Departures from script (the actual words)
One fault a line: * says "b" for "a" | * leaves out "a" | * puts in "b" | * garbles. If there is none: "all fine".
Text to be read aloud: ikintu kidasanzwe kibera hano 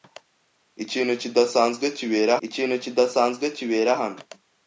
* puts in "ikintu kidasanzwe kibera"